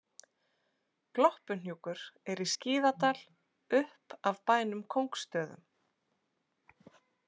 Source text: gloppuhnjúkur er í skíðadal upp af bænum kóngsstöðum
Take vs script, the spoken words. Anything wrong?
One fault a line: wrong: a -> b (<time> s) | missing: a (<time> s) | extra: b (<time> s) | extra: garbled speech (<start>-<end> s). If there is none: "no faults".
no faults